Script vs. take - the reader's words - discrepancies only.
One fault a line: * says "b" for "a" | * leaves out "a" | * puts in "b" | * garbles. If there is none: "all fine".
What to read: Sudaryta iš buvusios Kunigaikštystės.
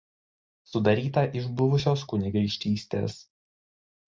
all fine